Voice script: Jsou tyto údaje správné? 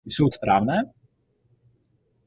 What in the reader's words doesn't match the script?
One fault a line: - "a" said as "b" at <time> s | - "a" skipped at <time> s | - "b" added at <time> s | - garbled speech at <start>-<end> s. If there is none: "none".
- "tyto údaje" skipped at 0.3 s